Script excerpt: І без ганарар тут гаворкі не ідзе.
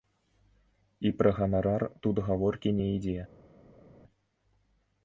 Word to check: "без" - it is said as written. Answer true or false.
false